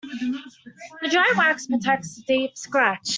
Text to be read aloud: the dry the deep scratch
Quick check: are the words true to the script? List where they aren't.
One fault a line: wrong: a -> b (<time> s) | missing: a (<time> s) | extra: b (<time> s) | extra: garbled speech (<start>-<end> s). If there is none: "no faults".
extra: wax protects (1.4 s)